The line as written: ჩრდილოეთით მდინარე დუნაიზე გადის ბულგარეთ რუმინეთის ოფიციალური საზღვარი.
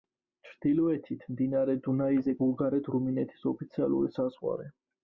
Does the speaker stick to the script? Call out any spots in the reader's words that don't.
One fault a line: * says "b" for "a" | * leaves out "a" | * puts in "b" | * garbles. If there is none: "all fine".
* leaves out "გადის"